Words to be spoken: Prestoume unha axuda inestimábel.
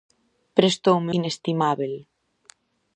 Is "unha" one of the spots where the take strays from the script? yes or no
yes